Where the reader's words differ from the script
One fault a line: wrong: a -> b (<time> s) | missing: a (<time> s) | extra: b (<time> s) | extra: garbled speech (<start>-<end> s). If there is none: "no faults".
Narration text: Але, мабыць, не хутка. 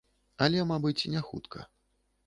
no faults